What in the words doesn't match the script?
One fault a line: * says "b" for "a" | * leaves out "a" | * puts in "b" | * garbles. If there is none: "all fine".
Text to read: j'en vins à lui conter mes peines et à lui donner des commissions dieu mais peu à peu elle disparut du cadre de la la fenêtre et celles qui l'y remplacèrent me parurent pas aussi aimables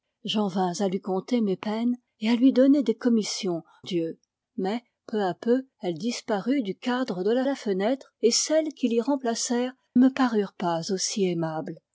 all fine